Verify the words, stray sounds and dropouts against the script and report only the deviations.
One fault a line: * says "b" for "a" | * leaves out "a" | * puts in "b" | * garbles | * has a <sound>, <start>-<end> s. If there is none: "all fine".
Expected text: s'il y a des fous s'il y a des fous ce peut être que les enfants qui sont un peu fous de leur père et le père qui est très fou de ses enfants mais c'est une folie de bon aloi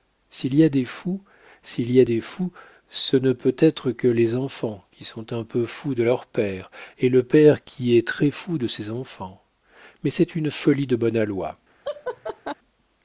* puts in "ne"
* has a laugh, 11.8-12.5 s